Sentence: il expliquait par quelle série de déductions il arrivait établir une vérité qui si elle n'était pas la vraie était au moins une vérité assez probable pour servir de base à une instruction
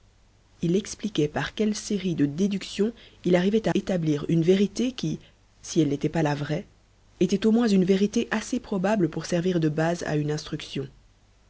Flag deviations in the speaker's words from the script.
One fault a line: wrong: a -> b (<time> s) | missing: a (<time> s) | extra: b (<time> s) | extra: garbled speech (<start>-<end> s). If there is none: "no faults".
no faults